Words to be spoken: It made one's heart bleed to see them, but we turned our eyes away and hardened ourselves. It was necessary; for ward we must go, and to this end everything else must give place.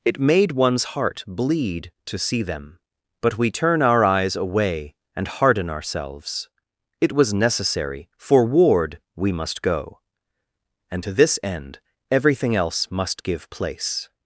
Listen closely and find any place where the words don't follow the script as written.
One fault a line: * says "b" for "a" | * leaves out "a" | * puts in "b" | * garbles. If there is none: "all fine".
* says "turn" for "turned"
* says "harden" for "hardened"